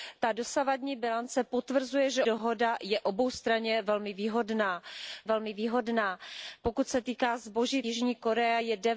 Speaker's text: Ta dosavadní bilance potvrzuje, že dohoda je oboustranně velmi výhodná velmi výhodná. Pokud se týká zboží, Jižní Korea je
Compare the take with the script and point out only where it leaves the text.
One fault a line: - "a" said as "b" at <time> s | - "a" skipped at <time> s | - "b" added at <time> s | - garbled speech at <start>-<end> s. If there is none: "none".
none